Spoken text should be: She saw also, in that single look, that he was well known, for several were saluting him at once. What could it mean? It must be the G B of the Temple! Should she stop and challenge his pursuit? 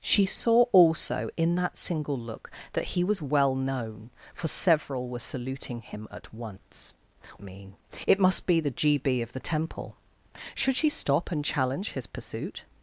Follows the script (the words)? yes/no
no